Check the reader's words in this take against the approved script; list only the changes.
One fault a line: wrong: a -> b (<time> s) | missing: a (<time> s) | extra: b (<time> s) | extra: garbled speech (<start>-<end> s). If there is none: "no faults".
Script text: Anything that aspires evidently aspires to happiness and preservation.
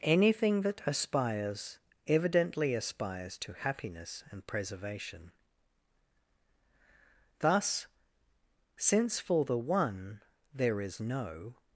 extra: Thus since for the One there is no (7.4 s)